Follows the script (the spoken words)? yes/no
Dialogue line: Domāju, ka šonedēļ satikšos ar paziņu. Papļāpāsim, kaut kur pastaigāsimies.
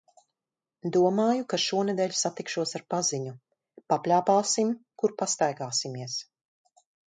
no